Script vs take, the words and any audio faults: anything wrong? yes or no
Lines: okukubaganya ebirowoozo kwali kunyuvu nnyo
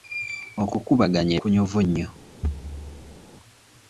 yes